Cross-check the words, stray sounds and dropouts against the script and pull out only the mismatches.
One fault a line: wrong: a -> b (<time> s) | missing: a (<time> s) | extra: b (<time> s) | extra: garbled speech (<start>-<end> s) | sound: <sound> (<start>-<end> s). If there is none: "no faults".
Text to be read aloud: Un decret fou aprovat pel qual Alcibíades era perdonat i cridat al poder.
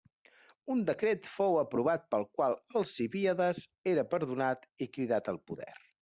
no faults